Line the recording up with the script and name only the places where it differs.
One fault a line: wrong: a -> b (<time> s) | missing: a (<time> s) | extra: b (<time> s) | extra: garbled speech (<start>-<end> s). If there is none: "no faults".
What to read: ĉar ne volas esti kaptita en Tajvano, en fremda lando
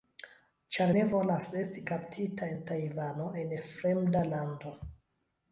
no faults